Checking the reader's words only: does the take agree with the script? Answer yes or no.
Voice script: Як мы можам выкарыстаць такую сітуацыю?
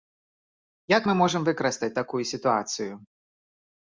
yes